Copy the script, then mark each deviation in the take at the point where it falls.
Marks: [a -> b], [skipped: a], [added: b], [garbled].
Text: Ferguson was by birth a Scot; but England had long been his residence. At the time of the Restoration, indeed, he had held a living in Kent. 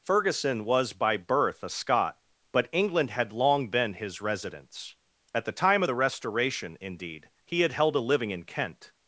Ferguson was by birth a Scot; but England had long been his residence. At the time of the Restoration, indeed, he had held a living in Kent.